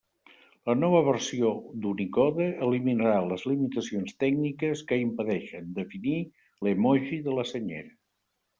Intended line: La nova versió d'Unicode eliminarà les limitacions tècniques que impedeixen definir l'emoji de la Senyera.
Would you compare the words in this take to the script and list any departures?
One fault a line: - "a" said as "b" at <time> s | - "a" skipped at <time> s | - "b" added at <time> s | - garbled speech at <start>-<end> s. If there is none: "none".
none